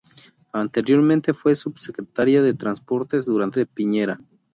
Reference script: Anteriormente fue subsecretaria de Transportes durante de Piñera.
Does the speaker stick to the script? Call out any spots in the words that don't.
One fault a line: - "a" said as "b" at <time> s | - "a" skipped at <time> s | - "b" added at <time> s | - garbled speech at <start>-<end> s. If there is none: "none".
none